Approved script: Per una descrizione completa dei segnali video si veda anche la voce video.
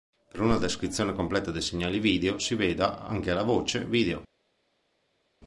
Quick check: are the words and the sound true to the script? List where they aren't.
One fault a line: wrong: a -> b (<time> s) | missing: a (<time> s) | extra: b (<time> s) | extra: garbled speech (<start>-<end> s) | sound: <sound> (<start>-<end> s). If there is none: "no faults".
no faults